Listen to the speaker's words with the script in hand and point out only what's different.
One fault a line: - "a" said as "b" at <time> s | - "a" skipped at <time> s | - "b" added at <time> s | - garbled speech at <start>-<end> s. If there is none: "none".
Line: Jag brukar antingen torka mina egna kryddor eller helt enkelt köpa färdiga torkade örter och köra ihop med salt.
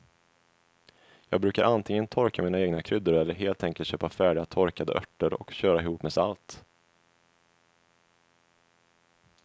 none